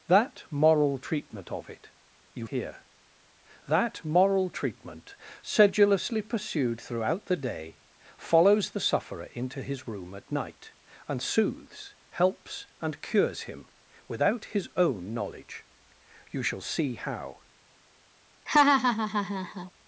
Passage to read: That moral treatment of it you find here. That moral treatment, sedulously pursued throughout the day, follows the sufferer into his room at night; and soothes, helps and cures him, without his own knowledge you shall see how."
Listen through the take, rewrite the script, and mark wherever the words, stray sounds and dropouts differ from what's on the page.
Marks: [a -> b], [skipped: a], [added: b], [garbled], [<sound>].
That moral treatment of it you [skipped: find] here. That moral treatment, sedulously pursued throughout the day, follows the sufferer into his room at night; and soothes, helps and cures him, without his own knowledge you shall see how." [laugh]